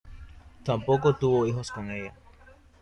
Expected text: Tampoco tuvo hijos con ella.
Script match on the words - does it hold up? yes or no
yes